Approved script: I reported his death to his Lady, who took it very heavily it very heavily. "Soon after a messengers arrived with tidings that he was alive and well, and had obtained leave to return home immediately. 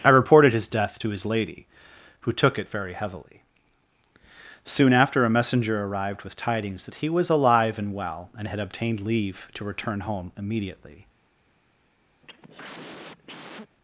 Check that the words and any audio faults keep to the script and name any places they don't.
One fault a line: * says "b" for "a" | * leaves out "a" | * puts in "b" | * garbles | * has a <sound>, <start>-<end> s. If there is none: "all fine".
* leaves out "it very heavily"
* says "messenger" for "messengers"
* has a cough, 12.2-13.8 s